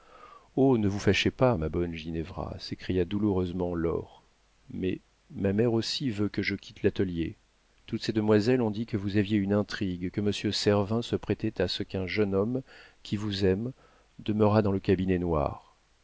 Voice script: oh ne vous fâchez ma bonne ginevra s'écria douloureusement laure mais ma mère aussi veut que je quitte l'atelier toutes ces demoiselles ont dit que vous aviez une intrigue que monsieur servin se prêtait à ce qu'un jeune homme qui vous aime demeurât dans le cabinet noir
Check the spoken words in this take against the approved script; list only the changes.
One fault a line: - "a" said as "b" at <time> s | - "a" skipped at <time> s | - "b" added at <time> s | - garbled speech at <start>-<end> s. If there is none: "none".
- "pas" added at 1.3 s